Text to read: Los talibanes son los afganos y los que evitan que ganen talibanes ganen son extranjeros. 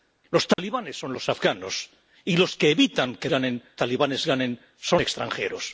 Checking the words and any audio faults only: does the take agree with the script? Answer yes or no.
no